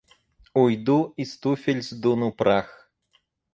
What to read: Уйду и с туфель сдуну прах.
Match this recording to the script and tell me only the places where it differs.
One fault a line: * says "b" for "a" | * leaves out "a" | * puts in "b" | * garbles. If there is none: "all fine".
all fine